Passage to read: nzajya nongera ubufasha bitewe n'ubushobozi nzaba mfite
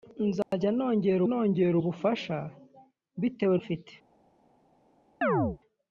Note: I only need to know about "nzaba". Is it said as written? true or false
false